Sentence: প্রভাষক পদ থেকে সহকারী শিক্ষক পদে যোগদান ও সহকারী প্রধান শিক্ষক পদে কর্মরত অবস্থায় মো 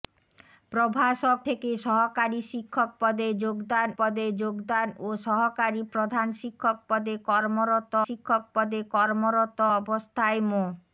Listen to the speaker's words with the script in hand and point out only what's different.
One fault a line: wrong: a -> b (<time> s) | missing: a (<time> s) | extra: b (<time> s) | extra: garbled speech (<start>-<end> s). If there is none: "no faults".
missing: পদ (1.4 s)
extra: পদে যোগদান (4.0 s)
extra: শিক্ষক পদে কর্মরত (8.1 s)